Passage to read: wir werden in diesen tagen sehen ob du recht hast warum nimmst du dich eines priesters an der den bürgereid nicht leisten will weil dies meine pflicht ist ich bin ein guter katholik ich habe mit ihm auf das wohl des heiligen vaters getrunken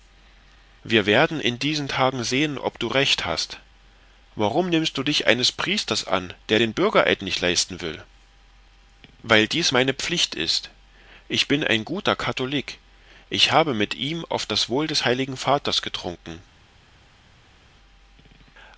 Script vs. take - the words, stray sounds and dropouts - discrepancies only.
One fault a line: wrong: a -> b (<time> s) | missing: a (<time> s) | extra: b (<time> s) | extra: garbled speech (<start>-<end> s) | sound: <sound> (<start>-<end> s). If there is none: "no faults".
no faults